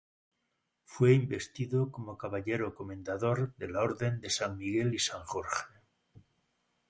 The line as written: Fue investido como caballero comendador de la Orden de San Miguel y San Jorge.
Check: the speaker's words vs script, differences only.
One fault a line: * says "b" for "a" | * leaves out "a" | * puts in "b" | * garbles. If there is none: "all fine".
all fine